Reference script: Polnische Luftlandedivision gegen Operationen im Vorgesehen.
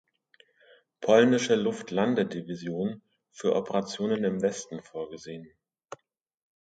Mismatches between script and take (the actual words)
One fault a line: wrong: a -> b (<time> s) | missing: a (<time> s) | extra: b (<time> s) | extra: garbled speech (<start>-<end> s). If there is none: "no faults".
wrong: gegen -> für (3.3 s)
extra: Westen (4.4 s)